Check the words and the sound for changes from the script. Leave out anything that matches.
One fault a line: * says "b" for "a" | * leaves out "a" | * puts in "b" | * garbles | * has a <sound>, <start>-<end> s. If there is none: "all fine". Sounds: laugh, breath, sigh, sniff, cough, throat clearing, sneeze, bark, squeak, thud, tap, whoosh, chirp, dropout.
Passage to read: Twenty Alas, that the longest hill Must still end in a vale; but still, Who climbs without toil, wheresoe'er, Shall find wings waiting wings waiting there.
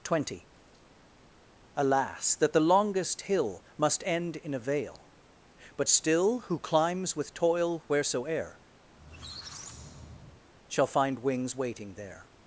* leaves out "still"
* says "with" for "without"
* has a squeak, 8.9-10.4 s
* leaves out "wings waiting"